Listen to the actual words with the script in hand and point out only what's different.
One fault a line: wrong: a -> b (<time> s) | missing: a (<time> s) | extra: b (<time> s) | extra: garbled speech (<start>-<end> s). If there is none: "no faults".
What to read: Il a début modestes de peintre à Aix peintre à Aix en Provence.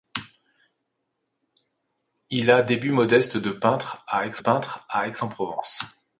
no faults